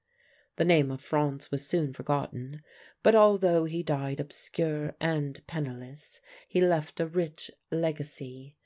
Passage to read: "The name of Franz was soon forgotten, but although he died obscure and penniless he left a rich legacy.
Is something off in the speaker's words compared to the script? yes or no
no